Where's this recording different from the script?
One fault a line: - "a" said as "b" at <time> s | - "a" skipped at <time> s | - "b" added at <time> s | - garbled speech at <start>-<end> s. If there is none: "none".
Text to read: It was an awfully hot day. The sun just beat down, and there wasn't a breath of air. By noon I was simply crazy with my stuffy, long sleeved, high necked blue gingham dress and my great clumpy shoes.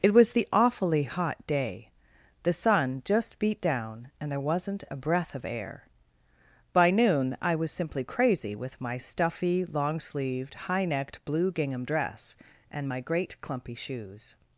- "an" said as "the" at 0.3 s